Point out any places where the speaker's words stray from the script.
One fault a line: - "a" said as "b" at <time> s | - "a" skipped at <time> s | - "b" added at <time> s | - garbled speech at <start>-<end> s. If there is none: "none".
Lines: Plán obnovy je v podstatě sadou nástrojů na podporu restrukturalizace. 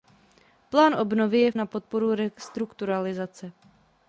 - "podstatě sadou nástrojů" skipped at 1.5 s